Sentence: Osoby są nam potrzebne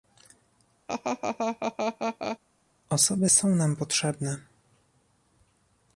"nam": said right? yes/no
yes